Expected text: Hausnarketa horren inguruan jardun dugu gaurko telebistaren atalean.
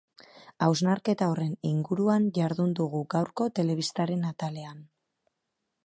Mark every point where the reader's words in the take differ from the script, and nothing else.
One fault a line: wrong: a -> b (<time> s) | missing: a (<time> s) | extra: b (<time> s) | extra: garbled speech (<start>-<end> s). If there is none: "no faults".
no faults